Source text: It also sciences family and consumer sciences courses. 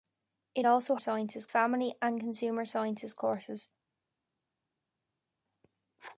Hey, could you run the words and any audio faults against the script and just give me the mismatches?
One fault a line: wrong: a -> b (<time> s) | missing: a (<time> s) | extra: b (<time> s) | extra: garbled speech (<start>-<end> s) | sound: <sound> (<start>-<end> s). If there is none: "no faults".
no faults